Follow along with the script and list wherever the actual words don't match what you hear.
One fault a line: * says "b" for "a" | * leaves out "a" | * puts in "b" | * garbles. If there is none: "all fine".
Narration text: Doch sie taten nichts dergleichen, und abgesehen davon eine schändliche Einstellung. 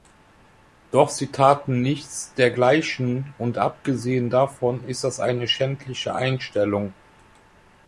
* puts in "ist das"